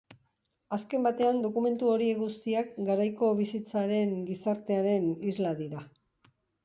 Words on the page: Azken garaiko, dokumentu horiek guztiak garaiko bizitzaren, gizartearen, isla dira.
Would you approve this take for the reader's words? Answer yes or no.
no